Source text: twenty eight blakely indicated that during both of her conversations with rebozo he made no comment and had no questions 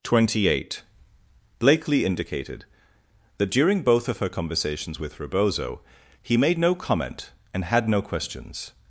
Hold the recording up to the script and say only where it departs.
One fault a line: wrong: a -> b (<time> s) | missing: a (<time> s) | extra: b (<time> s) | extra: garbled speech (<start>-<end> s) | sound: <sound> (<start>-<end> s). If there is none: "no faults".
no faults